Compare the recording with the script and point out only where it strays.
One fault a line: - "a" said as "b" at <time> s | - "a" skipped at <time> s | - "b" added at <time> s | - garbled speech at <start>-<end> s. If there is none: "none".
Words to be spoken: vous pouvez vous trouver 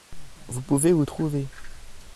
none